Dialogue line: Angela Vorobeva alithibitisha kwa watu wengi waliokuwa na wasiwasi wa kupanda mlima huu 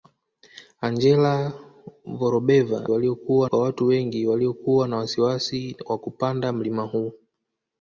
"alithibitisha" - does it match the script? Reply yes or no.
no